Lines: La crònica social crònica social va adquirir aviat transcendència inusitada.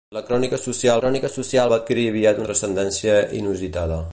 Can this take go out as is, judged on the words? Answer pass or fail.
pass